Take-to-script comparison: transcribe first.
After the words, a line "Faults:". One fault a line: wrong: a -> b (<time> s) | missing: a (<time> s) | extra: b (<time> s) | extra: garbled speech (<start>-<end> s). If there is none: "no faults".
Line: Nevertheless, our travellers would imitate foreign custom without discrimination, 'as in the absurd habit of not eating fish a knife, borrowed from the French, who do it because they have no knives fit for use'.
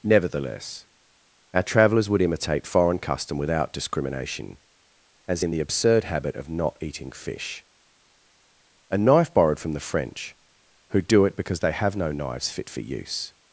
Nevertheless, our travellers would imitate foreign custom without discrimination, 'as in the absurd habit of not eating fish a knife, borrowed from the French, who do it because they have no knives fit for use'.
Faults:
no faults